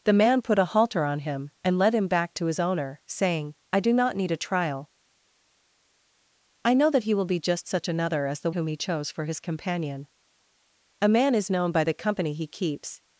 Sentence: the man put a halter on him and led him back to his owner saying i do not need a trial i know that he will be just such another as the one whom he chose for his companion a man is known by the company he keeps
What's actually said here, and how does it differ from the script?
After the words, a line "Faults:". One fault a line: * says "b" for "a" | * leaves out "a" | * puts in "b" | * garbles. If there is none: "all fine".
the man put a halter on him and led him back to his owner saying i do not need a trial i know that he will be just such another as the whom he chose for his companion a man is known by the company he keeps
Faults:
* leaves out "one"